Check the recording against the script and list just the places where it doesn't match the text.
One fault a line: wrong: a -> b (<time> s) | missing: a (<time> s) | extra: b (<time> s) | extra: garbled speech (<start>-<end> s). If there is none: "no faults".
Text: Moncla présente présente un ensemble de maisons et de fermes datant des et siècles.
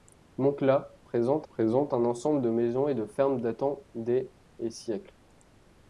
no faults